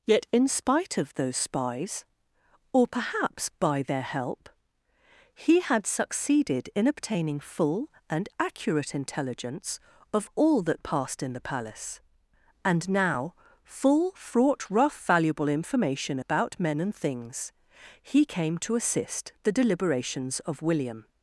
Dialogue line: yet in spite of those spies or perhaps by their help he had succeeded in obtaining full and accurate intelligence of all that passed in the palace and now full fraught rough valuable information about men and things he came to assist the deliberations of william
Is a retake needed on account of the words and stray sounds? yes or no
no